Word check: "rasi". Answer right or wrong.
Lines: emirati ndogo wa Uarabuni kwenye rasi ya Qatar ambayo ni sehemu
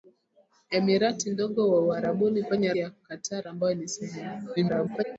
wrong